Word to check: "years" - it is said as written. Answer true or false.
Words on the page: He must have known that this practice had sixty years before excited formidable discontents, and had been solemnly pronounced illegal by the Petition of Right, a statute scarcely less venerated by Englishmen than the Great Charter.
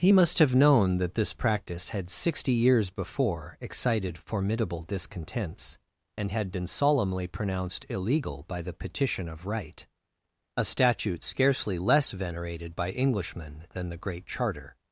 true